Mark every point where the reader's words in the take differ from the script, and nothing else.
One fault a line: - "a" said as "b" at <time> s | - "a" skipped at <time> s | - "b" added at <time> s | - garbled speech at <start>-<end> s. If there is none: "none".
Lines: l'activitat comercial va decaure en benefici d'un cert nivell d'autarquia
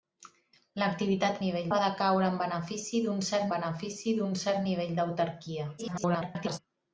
- "comercial" said as "nivell" at 1.4 s
- "benefici d'un cert" added at 3.5 s
- garbled speech at 5.8-6.6 s